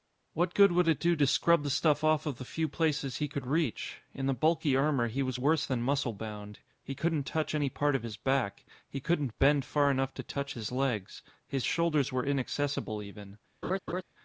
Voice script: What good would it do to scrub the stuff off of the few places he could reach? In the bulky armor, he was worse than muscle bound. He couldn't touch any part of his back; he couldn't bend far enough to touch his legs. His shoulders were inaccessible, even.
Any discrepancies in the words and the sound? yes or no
yes